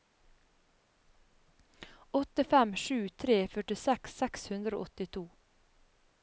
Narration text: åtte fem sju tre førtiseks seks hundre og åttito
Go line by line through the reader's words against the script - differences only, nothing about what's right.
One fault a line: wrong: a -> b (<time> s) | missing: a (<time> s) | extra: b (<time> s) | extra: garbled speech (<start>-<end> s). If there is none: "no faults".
no faults